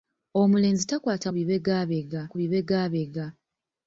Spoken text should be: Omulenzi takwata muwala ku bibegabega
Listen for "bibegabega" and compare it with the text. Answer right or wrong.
right